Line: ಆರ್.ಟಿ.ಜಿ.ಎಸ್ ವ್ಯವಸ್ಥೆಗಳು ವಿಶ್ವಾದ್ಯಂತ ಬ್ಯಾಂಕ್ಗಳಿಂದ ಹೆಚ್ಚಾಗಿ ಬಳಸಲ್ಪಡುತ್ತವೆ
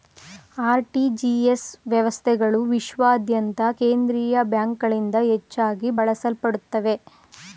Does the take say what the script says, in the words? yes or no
no